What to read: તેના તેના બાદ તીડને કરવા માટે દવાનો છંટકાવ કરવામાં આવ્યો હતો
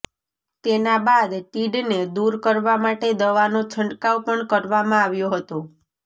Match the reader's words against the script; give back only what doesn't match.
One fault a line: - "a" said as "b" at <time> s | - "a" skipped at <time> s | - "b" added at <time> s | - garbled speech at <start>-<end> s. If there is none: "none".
- "તેના" skipped at 1.0 s
- "દૂર" added at 2.1 s
- "પણ" added at 4.2 s